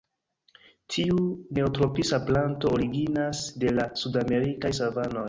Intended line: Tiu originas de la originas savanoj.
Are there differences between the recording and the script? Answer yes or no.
yes